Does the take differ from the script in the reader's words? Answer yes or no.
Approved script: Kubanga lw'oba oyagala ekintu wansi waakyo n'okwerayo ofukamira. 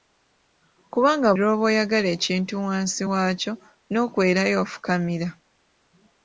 no